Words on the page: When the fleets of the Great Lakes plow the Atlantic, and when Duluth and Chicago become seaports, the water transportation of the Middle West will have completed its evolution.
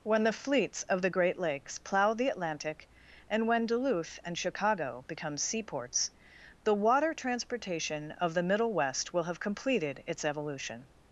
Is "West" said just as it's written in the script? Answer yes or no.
yes